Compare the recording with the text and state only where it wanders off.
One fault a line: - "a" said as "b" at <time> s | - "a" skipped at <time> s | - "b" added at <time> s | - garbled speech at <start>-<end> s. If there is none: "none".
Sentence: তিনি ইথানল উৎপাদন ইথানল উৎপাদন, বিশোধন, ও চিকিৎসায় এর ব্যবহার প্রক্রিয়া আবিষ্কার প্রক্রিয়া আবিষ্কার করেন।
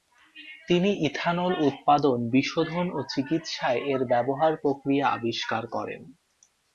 - "ইথানল উৎপাদন" skipped at 2.2 s
- "প্রক্রিয়া আবিষ্কার" skipped at 5.6 s